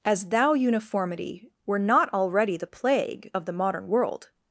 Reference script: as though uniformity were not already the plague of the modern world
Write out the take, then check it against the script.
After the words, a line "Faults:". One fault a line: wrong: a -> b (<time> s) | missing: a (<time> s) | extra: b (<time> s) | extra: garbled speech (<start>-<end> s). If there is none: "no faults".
as thou uniformity were not already the plague of the modern world
Faults:
wrong: though -> thou (0.3 s)